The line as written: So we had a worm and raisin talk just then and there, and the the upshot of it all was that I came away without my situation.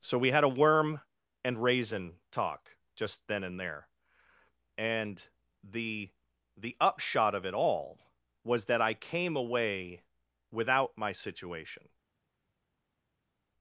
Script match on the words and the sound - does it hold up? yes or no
yes